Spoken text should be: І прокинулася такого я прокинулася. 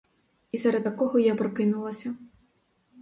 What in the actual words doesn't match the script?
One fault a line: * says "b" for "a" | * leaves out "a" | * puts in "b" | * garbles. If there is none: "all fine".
* says "серед" for "прокинулася"